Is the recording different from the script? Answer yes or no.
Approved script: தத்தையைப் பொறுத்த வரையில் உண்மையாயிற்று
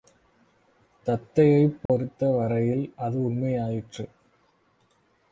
yes